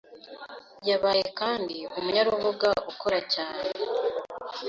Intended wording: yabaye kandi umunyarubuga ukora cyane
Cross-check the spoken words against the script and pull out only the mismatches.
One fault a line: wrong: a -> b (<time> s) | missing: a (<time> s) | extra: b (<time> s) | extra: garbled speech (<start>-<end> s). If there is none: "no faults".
no faults